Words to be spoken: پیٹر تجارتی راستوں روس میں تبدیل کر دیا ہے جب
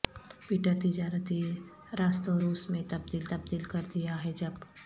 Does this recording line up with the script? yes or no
no